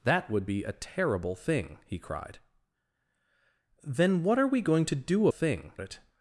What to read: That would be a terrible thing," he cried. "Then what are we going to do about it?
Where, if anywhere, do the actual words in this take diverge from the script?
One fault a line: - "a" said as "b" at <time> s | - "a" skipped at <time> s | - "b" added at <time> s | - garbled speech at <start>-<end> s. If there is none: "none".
- "about" said as "thing" at 5.3 s